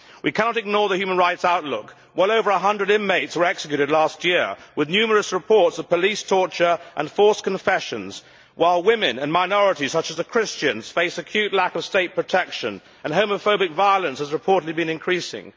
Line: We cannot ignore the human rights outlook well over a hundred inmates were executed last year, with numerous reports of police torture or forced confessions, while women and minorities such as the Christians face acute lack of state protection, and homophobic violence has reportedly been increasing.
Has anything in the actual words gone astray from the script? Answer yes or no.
yes